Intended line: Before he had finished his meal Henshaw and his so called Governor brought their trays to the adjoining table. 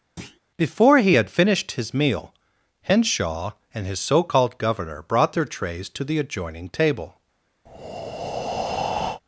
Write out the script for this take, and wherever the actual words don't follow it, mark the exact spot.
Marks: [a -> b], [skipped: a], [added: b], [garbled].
Before he had finished his meal Henshaw and his so called Governor brought their trays to the adjoining table.